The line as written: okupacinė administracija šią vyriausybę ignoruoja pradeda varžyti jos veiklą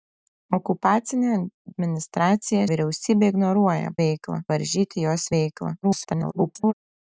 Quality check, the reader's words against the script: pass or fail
fail